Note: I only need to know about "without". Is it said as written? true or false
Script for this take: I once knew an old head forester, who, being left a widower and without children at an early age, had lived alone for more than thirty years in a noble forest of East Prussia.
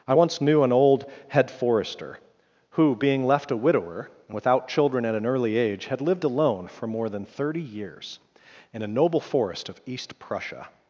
true